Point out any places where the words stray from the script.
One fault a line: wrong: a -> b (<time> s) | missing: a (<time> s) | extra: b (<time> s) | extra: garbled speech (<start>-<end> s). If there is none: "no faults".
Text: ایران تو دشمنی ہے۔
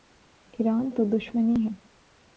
no faults